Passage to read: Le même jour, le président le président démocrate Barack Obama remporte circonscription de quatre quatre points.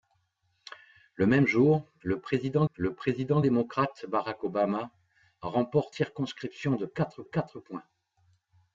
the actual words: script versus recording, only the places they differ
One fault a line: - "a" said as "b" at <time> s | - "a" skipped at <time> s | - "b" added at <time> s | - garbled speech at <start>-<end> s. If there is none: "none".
none